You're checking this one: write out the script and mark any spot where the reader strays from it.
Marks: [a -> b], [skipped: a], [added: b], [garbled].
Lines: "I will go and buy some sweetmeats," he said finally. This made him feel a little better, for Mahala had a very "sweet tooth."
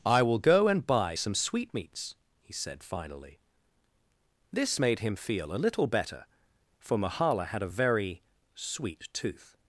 "I will go and buy some sweetmeats," he said finally. This made him feel a little better, for Mahala had a very "sweet tooth."